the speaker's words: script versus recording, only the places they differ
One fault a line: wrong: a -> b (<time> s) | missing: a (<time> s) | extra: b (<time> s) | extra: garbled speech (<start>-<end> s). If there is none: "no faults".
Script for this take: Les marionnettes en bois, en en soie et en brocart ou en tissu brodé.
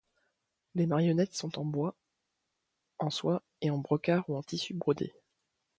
extra: sont (1.4 s)
missing: en (3.1 s)